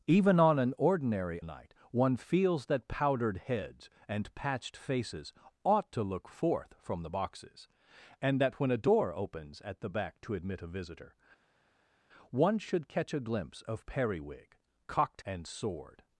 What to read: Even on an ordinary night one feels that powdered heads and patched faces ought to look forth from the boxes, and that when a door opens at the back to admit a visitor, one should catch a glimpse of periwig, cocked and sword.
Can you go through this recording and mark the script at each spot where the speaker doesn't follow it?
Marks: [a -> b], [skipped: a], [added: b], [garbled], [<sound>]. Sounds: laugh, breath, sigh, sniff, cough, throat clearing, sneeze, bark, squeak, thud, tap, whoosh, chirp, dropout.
Even on an ordinary night one feels that powdered heads and patched faces ought to look forth from the boxes, and that when a door opens at the back to admit a visitor, one should catch a glimpse of periwig, cocked and sword.